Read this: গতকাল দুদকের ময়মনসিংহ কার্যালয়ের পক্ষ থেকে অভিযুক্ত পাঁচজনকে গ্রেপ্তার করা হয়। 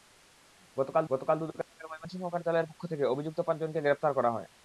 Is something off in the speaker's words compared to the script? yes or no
yes